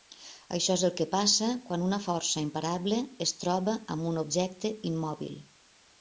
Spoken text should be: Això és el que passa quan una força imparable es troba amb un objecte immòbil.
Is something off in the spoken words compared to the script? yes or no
no